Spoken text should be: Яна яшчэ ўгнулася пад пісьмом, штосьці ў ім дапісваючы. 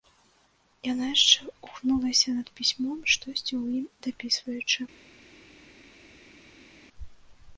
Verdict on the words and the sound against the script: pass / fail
fail